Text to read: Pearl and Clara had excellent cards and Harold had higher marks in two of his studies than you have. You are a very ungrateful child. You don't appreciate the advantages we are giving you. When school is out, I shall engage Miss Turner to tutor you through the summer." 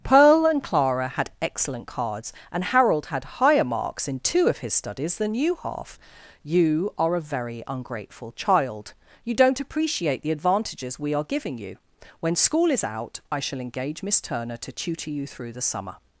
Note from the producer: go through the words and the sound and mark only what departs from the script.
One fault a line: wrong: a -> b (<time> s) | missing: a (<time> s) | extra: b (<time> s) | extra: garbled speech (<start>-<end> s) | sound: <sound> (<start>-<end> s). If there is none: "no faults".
wrong: have -> half (5.6 s)